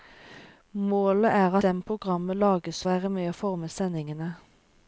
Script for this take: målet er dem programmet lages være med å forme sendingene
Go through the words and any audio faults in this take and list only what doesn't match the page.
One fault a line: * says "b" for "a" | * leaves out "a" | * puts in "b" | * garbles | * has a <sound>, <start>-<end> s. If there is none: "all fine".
all fine